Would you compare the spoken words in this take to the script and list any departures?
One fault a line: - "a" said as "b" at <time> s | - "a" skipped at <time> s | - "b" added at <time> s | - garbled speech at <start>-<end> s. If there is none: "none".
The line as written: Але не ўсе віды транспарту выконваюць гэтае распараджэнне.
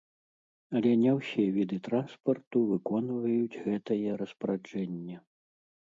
none